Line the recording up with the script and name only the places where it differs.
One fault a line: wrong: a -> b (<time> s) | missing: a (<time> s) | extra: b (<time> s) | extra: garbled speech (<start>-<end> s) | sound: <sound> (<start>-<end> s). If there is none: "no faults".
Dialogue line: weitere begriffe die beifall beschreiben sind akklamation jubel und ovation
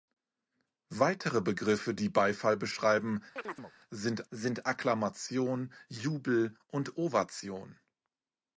sound: chirp (3.4-3.7 s)
extra: sind (4.3 s)